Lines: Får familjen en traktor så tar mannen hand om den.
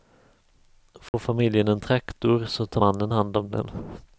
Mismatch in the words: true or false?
false